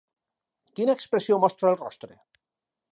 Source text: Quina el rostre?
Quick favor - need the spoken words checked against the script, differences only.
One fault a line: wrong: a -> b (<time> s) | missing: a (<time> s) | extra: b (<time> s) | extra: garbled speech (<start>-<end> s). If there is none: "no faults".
extra: expressió mostra (1.0 s)